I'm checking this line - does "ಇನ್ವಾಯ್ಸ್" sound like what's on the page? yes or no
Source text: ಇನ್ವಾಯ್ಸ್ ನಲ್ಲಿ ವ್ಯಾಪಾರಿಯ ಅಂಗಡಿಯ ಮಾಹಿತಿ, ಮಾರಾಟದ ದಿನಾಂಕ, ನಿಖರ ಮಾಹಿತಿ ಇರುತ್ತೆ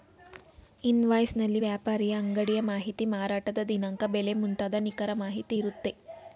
yes